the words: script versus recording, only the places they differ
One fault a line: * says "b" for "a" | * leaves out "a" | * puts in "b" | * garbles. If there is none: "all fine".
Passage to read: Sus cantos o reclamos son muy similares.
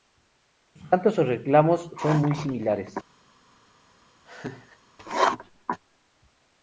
all fine